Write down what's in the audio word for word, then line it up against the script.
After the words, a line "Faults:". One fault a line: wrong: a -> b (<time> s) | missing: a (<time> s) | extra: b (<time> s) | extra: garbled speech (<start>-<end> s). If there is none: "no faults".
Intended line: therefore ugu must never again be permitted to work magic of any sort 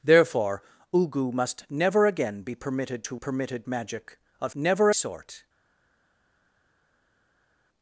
therefore ugu must never again be permitted to permitted magic of never sort
Faults:
wrong: work -> permitted (3.2 s)
wrong: any -> never (4.5 s)